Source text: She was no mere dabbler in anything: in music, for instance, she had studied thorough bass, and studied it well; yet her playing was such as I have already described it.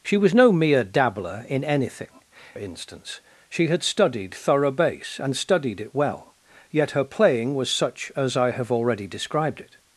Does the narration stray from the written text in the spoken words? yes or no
yes